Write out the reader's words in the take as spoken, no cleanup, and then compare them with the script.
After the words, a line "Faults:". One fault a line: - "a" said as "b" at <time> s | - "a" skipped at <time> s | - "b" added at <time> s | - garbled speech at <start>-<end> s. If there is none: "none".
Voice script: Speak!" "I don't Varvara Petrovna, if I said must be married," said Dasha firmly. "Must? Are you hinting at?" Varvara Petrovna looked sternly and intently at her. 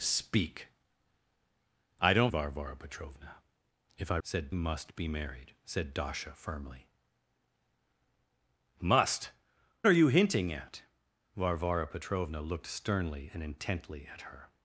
Speak!" "I don't Varvara Petrovna, if I said must be married," said Dasha firmly. "Must? Are you hinting at?" Varvara Petrovna looked sternly and intently at her.
Faults:
none